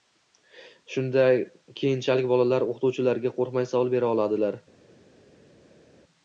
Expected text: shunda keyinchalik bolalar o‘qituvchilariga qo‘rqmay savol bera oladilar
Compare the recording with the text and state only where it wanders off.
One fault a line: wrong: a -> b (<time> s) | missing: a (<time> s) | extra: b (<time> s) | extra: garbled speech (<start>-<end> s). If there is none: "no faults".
no faults